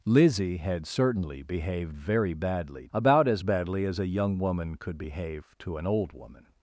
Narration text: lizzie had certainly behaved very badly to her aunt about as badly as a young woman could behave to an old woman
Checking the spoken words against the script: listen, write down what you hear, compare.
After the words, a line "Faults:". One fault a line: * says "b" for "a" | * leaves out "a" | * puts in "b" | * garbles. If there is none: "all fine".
lizzie had certainly behaved very badly about as badly as a young woman could behave to an old woman
Faults:
* leaves out "to her aunt"